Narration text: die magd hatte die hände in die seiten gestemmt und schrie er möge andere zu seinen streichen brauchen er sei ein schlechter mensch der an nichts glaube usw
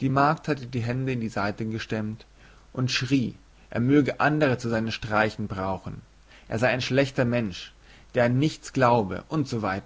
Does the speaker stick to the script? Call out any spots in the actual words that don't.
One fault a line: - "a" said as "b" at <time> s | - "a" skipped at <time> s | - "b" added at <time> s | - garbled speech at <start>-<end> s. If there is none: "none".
none